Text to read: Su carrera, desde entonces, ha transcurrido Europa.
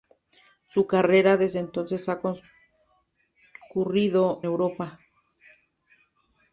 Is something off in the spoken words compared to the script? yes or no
no